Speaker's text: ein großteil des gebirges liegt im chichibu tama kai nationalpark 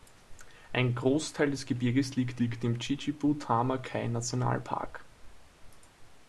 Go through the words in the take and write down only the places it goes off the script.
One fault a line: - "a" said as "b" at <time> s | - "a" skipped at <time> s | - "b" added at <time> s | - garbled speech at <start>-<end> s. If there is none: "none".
- "liegt" added at 2.4 s